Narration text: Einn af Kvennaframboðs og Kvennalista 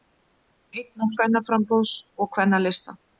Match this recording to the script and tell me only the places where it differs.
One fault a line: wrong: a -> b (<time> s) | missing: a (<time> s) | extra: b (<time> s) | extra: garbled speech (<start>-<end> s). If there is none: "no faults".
no faults